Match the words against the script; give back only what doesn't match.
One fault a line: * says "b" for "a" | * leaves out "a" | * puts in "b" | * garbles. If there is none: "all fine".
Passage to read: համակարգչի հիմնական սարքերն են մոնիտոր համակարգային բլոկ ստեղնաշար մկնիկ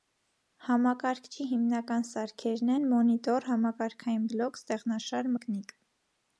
all fine